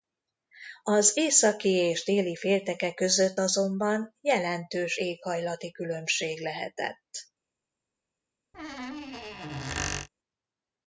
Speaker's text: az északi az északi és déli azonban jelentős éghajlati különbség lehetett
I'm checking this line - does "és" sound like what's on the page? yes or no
no